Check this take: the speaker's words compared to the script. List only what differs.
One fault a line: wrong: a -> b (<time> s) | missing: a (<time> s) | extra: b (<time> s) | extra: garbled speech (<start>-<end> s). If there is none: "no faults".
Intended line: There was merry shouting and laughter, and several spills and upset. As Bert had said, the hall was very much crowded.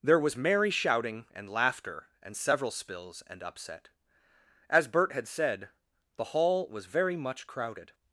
no faults